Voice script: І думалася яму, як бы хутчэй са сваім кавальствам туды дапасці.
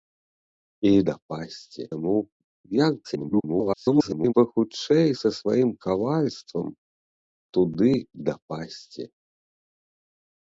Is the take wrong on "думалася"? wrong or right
wrong